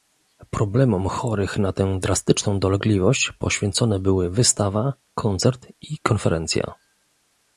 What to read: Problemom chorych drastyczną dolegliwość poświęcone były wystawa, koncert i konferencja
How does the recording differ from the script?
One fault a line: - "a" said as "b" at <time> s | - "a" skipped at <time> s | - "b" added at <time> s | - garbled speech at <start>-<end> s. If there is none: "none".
- "na tę" added at 1.6 s